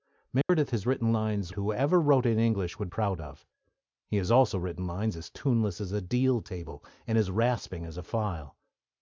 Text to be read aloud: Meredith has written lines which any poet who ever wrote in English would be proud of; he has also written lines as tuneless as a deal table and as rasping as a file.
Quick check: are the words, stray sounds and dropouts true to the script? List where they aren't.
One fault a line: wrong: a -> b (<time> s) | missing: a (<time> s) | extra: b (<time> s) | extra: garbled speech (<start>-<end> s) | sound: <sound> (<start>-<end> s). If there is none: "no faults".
sound: dropout (0.4-0.5 s)
missing: which any poet (1.5 s)
missing: be (2.9 s)